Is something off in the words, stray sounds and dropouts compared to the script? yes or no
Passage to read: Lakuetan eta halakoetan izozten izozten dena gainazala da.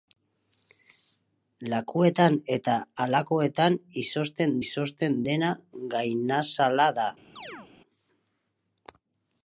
yes